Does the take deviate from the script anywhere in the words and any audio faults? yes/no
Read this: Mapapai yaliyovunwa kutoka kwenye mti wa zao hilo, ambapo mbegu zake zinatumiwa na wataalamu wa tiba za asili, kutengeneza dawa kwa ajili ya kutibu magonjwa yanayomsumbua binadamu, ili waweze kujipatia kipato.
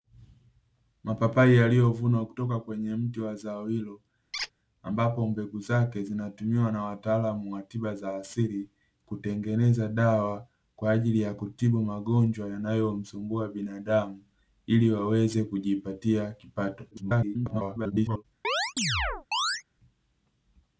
yes